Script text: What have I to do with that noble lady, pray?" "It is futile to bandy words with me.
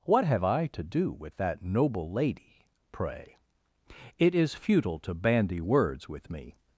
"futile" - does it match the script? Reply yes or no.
yes